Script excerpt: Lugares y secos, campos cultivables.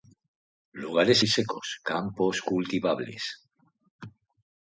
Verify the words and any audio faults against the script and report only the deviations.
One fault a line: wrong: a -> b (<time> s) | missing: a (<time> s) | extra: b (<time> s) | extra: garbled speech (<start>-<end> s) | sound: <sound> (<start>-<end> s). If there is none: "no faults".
no faults